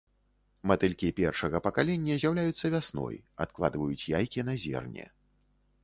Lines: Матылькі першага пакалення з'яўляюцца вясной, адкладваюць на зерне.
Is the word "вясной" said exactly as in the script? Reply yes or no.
yes